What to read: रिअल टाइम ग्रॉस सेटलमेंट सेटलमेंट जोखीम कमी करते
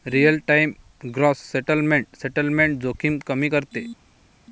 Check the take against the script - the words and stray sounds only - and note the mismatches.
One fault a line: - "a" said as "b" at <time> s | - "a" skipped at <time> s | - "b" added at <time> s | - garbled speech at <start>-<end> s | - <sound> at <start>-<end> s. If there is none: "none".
none